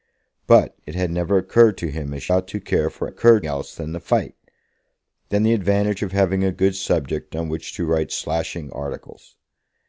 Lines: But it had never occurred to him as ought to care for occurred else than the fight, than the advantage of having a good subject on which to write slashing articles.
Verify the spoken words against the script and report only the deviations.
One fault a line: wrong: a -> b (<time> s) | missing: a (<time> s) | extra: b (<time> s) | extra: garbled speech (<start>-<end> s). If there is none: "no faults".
no faults